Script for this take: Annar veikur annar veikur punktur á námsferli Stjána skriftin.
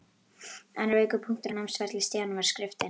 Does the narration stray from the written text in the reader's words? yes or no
yes